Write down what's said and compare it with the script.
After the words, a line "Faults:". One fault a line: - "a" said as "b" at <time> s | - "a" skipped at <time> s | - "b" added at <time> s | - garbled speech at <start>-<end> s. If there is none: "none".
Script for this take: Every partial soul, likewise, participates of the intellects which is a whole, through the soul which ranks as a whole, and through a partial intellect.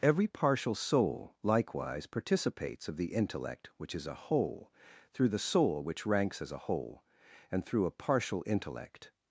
Every partial soul, likewise, participates of the intellect which is a whole, through the soul which ranks as a whole, and through a partial intellect.
Faults:
- "intellects" said as "intellect" at 3.1 s